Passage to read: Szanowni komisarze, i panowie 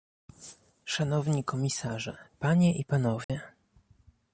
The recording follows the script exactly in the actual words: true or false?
false